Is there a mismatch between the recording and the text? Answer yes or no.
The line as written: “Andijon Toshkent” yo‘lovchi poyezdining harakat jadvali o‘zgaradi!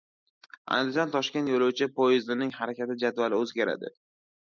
no